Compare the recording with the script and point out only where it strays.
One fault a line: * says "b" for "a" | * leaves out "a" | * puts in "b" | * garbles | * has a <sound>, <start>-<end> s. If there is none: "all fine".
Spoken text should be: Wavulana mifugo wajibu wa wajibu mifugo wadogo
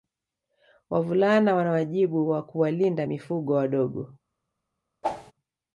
* says "wana" for "mifugo"
* says "kuwalinda" for "wajibu"
* has a whoosh, 5.0-5.3 s